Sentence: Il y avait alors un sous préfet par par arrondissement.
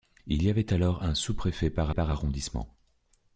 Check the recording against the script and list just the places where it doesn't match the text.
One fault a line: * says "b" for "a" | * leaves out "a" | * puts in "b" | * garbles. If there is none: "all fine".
all fine